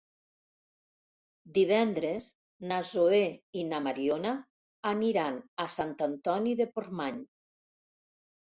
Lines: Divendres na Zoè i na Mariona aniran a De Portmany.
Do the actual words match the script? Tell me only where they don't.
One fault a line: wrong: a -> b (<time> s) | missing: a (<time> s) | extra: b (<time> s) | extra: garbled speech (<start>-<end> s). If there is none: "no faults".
extra: Sant Antoni (5.8 s)